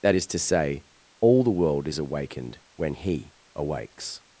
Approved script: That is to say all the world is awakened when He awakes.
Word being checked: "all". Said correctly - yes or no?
yes